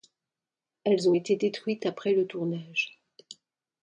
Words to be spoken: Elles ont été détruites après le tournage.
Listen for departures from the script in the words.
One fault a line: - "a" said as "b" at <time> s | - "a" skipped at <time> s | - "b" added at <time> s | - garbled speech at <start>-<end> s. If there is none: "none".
none